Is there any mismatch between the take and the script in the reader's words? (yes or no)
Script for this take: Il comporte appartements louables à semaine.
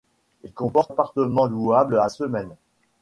no